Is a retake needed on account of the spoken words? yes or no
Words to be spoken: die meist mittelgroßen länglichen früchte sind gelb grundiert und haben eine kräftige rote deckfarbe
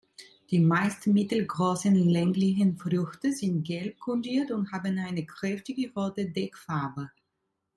no